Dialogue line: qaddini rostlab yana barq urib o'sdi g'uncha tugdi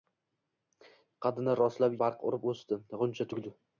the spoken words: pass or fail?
fail